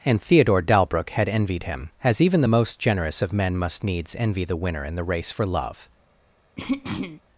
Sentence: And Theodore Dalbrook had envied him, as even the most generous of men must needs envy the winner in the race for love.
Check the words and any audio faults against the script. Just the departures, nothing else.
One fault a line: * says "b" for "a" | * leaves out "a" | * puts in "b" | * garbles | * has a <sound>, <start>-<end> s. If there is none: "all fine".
* has a throat clearing, 6.6-7.2 s